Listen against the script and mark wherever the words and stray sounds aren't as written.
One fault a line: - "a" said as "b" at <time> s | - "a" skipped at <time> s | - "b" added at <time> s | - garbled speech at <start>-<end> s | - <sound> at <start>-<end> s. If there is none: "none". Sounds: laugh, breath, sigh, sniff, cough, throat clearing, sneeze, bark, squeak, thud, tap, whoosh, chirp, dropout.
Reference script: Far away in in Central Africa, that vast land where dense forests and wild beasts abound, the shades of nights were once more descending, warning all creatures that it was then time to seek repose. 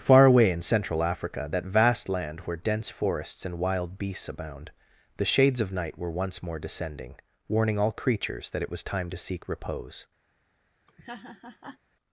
- "in" skipped at 0.6 s
- "nights" said as "night" at 5.7 s
- "then" skipped at 8.8 s
- laugh at 10.9-11.8 s